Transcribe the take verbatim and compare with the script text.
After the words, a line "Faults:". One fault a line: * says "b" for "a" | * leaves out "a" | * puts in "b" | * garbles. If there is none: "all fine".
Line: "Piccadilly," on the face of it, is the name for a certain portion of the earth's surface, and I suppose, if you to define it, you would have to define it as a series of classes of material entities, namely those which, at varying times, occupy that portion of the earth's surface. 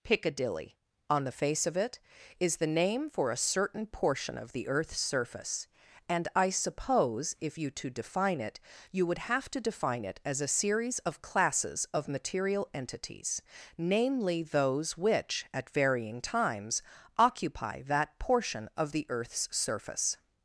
"Piccadilly," on the face of it, is the name for a certain portion of the earth's surface, and I suppose, if you to define it, you would have to define it as a series of classes of material entities, namely those which, at varying times, occupy that portion of the earth's surface.
Faults:
all fine